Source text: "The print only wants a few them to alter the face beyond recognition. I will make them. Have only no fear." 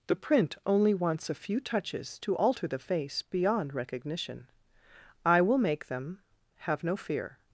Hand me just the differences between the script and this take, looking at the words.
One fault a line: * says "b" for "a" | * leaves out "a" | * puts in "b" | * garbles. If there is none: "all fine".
* says "touches" for "them"
* leaves out "only"